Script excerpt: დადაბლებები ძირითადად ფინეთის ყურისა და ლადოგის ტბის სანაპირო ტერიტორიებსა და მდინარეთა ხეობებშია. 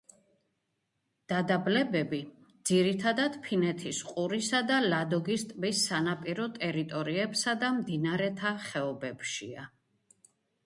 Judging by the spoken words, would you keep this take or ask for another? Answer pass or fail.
pass